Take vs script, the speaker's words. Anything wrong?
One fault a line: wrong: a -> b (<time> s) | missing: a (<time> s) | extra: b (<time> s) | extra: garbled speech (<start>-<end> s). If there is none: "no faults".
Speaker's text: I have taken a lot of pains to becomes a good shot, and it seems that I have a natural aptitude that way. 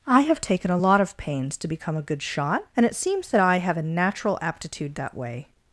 wrong: becomes -> become (1.7 s)